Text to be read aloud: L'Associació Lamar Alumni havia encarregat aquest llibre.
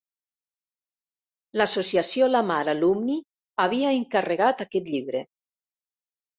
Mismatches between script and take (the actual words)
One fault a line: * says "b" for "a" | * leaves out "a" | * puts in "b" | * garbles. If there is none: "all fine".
all fine